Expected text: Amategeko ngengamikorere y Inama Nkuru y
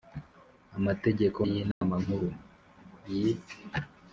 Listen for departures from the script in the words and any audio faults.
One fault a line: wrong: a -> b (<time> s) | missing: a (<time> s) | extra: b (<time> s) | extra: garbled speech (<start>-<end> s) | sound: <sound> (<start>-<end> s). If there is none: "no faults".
missing: ngengamikorere (1.4 s)
sound: dropout (1.7-1.8 s)